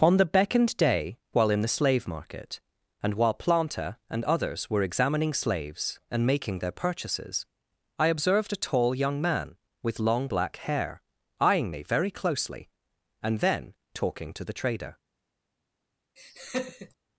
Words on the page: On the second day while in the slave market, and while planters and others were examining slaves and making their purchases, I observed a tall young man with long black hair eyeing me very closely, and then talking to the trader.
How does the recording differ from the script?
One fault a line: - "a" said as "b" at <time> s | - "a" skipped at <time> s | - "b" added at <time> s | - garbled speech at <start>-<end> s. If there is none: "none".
- "second" said as "beckoned" at 0.2 s
- "planters" said as "planter" at 3.4 s